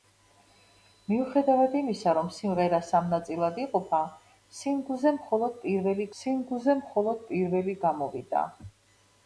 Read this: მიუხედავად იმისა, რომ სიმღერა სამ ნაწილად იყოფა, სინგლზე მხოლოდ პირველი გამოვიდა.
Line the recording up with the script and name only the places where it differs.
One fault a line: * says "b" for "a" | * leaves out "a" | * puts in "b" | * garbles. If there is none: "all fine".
* puts in "სინგლზე მხოლოდ პირველი"